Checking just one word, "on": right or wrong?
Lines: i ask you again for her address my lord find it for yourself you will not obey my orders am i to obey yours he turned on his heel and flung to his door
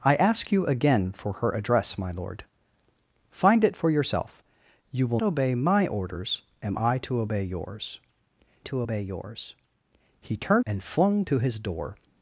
wrong